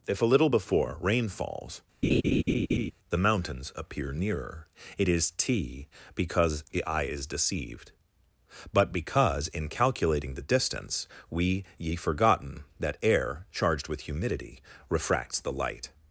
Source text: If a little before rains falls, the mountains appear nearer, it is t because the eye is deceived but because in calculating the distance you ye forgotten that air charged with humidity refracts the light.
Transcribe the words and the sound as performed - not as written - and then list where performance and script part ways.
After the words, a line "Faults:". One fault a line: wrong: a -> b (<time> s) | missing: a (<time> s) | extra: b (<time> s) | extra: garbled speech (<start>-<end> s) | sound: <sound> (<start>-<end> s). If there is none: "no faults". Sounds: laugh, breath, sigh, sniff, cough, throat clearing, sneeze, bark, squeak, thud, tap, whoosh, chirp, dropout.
If a little before rain falls, the mountains appear nearer, it is t because the eye is deceived but because in calculating the distance we ye forgotten that air charged with humidity refracts the light.
Faults:
wrong: rains -> rain (1.0 s)
sound: laugh (2.0-2.9 s)
wrong: you -> we (11.3 s)